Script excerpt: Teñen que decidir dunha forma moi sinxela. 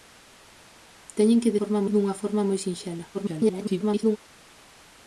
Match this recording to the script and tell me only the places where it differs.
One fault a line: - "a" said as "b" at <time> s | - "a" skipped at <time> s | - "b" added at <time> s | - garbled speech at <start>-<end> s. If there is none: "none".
- "decidir" said as "forma" at 1.6 s
- garbled speech at 3.1-4.2 s